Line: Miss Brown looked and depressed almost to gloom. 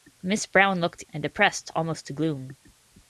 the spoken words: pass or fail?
pass